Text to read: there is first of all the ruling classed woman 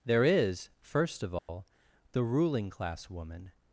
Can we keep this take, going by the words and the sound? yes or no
no